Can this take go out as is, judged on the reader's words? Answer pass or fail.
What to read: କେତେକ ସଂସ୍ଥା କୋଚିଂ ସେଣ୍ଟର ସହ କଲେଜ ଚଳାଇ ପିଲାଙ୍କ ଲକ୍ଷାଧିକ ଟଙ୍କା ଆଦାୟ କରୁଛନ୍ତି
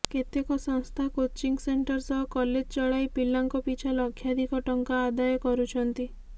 fail